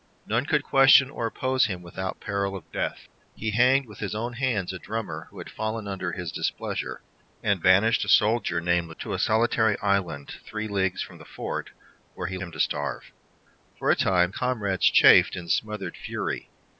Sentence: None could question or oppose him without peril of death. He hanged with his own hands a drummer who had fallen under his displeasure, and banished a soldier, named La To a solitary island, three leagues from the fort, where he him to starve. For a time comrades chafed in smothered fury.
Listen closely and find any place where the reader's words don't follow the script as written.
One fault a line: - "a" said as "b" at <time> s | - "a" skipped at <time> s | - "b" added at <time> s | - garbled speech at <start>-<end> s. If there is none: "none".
none